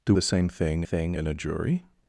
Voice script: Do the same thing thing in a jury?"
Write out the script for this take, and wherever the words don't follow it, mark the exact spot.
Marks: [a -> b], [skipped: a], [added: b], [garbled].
Do the same thing thing in a jury?"